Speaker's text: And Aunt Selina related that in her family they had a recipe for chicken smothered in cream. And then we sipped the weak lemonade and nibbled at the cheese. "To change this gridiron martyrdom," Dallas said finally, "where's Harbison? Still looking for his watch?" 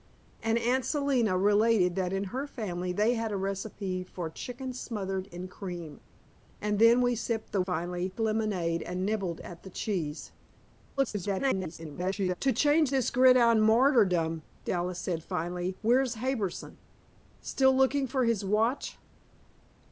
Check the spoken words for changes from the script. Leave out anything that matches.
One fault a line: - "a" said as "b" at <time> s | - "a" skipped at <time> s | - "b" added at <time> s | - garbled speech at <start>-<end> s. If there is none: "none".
- "weak" said as "finally" at 7.6 s
- garbled speech at 11.0-12.4 s